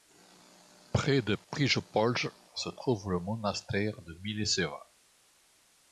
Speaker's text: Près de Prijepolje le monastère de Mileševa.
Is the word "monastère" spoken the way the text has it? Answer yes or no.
yes